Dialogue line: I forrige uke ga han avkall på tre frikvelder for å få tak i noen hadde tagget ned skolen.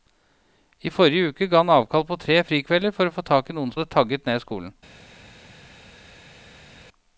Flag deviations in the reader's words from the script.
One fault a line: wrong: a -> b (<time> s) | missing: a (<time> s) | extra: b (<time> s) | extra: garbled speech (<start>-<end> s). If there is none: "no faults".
no faults